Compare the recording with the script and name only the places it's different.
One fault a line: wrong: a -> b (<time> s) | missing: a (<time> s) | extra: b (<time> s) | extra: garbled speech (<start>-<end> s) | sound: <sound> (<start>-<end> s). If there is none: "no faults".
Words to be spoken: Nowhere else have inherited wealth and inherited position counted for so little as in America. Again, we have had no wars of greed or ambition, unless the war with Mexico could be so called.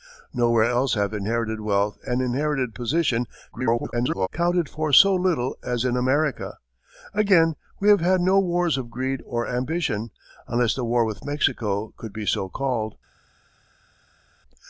extra: garbled speech (3.5-4.3 s)